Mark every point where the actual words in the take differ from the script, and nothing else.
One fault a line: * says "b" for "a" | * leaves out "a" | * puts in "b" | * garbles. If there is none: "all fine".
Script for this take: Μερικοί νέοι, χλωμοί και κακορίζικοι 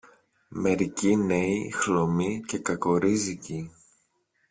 all fine